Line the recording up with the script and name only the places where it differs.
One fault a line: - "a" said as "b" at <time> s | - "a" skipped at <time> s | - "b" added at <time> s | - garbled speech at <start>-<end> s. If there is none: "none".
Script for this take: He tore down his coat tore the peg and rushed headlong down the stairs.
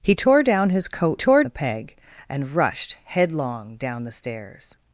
none